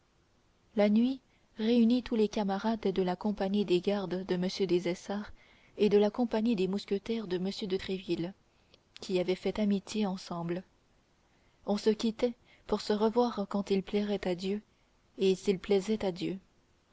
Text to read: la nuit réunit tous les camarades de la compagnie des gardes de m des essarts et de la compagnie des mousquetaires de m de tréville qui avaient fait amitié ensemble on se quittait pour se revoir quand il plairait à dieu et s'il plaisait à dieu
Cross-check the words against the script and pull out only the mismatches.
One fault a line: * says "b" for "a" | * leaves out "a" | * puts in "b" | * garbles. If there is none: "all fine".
all fine